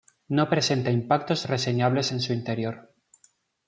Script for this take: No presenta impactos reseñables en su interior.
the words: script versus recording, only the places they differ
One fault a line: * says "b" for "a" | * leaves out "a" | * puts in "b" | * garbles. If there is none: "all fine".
all fine